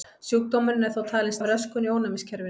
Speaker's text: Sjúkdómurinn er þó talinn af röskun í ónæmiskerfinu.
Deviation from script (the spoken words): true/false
false